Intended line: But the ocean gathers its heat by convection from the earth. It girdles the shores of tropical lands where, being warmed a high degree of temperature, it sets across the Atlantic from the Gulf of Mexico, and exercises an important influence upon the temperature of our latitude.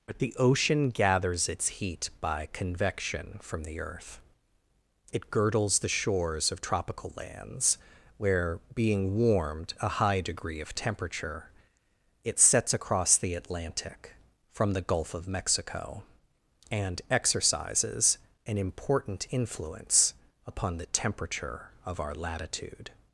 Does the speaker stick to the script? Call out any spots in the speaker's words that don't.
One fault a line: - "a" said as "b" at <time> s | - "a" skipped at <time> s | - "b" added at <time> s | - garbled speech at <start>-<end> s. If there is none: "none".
none